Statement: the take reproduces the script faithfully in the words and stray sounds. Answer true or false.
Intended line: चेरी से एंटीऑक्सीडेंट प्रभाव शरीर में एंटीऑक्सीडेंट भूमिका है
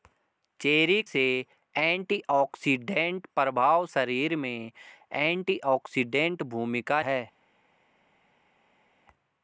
true